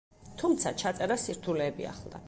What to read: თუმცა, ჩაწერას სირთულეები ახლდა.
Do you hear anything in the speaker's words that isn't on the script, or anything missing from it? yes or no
no